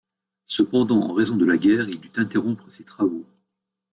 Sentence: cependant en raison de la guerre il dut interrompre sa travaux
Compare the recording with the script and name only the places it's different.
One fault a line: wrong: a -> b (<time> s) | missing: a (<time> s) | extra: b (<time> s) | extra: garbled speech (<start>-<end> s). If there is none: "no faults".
wrong: sa -> ses (2.7 s)